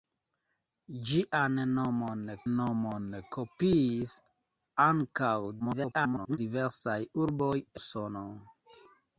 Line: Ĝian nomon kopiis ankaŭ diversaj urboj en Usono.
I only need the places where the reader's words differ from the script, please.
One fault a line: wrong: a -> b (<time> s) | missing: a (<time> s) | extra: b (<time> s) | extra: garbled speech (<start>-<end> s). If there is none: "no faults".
extra: nomon (2.5 s)
extra: garbled speech (5.6-6.4 s)
missing: en (7.6 s)